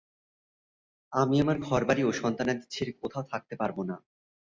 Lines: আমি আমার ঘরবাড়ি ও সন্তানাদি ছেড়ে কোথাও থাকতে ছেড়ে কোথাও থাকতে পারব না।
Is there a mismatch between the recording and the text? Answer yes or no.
yes